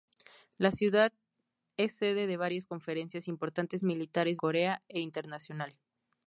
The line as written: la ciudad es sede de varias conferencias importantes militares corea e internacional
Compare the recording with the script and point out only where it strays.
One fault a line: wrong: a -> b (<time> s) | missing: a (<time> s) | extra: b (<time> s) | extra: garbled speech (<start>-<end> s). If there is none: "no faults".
no faults